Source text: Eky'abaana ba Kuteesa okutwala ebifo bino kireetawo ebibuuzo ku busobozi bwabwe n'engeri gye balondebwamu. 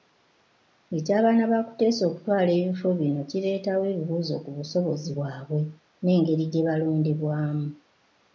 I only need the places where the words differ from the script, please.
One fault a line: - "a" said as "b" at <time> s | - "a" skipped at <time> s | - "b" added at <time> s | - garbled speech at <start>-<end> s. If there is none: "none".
none